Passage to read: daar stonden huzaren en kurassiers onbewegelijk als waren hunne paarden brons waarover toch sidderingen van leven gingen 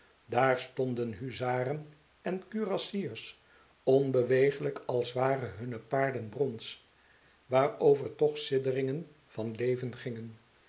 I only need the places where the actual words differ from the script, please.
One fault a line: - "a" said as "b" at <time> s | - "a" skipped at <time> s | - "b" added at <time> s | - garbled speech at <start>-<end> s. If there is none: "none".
none